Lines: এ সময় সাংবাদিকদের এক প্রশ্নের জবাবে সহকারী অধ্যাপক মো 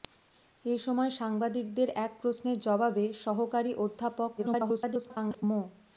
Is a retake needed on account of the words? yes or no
yes